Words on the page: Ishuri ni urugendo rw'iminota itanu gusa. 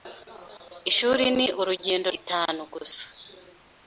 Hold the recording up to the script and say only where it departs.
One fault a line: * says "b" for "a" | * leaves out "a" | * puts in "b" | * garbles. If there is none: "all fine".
* leaves out "rw'iminota"